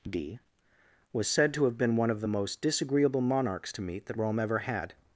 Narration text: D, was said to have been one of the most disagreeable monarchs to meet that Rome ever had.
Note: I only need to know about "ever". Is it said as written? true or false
true